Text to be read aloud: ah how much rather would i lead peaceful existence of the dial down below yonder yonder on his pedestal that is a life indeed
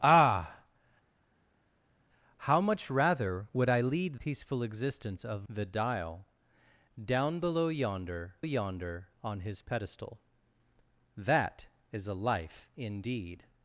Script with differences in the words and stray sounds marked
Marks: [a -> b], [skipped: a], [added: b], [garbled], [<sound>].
ah how much rather would i lead peaceful existence of the dial down below yonder yonder on his pedestal that is a life indeed